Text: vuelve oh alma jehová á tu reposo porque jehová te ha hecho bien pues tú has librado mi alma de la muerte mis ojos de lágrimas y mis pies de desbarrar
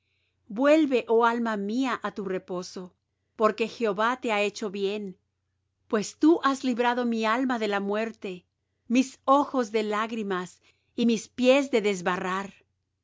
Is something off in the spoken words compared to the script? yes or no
yes